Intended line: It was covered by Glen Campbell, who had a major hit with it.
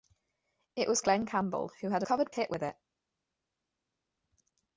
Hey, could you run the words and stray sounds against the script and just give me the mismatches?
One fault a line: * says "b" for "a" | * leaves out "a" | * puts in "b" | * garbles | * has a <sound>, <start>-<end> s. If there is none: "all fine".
* leaves out "covered by"
* says "covered" for "major"